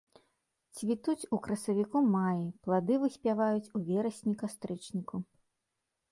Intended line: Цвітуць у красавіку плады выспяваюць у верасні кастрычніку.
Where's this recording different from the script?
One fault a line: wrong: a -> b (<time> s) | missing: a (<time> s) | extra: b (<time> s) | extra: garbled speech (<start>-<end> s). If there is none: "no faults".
extra: маі (2.1 s)